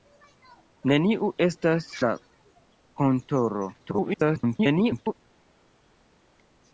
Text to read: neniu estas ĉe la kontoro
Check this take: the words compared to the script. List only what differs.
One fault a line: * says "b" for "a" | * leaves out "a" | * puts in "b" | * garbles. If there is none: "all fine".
* leaves out "ĉe"
* garbles